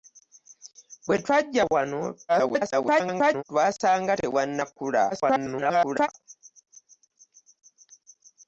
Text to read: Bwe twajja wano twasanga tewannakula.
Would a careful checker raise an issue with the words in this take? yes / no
yes